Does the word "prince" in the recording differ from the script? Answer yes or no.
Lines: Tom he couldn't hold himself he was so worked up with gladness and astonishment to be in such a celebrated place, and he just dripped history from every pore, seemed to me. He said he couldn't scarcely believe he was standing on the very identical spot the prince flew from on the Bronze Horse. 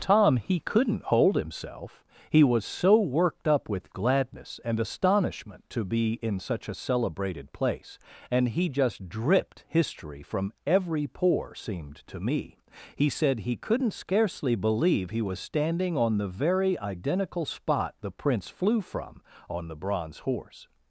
no